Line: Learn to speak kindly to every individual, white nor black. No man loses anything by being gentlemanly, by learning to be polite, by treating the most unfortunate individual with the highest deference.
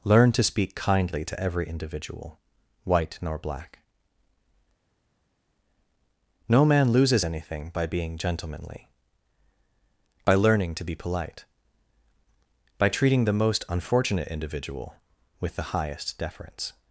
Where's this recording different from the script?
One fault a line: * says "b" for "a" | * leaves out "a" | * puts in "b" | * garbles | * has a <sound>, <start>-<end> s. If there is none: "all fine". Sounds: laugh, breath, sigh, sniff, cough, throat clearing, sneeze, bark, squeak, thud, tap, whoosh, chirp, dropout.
all fine